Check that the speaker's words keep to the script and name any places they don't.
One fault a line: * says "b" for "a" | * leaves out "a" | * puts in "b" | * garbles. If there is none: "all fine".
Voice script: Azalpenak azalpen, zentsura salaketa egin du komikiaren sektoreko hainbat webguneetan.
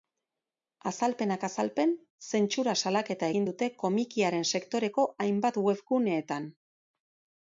* says "dute" for "du"